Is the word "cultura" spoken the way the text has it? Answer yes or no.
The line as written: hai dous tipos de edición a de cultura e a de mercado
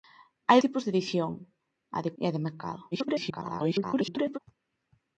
no